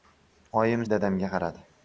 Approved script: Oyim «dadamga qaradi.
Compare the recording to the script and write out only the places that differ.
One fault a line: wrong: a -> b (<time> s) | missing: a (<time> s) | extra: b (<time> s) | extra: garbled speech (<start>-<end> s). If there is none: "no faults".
no faults